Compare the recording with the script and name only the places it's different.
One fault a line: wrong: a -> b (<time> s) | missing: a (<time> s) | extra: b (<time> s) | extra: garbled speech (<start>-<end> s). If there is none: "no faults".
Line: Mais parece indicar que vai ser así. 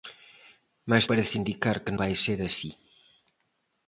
no faults